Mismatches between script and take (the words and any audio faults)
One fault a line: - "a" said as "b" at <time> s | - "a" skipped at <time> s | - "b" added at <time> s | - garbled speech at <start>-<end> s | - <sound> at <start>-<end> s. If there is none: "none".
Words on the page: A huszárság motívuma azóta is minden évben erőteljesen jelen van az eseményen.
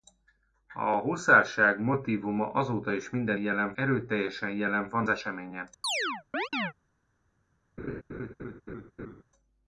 - "évben" said as "jelen" at 3.3 s
- "az" skipped at 5.1 s
- chirp at 5.8-6.7 s
- laugh at 7.8-9.2 s